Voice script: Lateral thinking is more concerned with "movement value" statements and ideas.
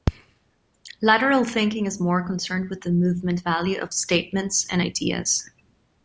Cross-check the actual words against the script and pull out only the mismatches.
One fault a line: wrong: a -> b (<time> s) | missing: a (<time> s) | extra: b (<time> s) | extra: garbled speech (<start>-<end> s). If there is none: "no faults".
extra: the (2.8 s)
extra: of (3.8 s)